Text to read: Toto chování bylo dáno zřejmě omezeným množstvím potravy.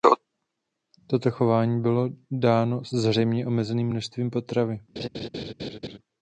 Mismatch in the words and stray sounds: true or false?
true